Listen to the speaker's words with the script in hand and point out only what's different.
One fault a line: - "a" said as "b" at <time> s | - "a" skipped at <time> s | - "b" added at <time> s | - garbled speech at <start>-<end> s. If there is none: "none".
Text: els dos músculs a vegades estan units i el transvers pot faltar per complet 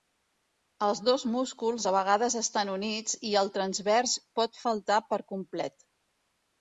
none